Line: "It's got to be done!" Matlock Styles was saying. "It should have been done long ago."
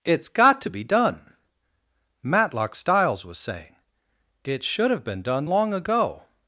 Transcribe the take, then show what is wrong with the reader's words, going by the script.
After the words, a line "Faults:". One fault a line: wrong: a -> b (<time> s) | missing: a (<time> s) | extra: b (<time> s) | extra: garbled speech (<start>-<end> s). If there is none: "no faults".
"It's got to be done!" Matlock Styles was saying. "It should have been done long ago."
Faults:
no faults